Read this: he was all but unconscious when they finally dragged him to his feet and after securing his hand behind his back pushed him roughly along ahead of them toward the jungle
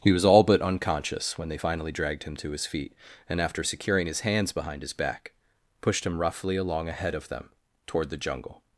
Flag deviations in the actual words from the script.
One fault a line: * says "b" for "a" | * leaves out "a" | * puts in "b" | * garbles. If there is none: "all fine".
* says "hands" for "hand"